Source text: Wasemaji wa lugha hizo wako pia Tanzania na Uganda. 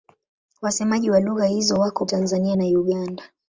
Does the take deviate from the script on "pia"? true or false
true